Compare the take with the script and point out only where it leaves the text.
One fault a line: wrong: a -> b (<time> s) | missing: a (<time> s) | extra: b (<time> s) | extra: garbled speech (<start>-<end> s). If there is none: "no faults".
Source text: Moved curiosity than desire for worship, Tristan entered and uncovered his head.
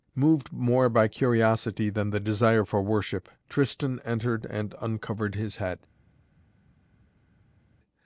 extra: more by (0.5 s)
extra: the (2.1 s)